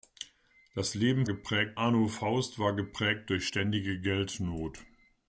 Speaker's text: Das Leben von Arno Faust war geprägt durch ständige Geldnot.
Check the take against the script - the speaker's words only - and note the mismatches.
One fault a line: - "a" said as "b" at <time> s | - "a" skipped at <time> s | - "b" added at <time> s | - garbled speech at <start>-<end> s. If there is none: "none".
- "von" said as "geprägt" at 1.3 s